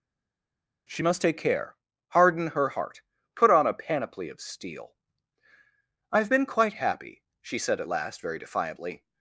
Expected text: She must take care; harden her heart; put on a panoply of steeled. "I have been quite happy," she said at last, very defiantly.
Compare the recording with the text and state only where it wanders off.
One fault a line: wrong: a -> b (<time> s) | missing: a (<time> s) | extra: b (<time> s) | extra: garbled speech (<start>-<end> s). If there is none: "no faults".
wrong: steeled -> steel (4.4 s)